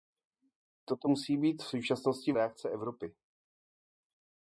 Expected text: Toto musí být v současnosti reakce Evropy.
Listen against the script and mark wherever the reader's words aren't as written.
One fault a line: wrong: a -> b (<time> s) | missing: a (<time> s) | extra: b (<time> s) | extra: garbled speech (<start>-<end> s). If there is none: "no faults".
no faults